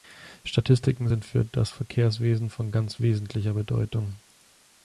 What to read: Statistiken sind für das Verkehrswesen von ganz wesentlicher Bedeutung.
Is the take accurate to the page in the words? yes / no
yes